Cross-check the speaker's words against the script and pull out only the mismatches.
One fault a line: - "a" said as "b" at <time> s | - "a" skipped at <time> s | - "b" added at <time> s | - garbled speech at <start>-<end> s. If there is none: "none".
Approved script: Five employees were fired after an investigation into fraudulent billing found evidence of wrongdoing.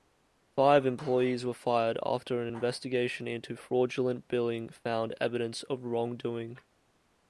none